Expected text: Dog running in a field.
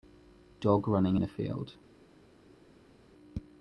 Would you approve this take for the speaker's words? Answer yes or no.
yes